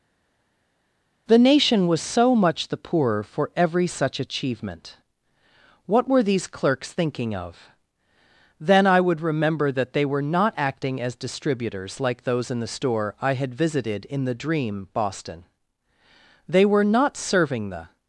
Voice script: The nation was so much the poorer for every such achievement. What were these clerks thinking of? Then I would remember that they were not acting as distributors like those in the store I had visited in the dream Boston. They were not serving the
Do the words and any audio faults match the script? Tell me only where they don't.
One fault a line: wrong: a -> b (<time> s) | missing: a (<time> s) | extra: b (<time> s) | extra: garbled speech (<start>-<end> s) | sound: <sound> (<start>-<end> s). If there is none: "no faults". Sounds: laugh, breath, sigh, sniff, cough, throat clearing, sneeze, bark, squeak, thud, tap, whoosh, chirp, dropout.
no faults